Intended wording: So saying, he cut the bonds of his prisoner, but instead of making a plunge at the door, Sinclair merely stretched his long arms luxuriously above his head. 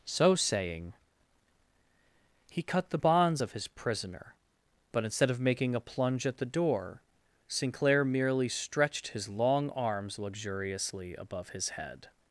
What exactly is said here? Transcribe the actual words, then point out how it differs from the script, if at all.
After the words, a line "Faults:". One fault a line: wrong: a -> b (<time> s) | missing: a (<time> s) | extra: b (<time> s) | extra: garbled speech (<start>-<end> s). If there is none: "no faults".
So saying, he cut the bonds of his prisoner, but instead of making a plunge at the door, Sinclair merely stretched his long arms luxuriously above his head.
Faults:
no faults